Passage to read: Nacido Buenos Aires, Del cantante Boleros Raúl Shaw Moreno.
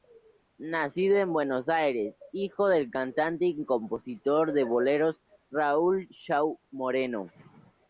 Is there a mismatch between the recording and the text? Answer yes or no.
yes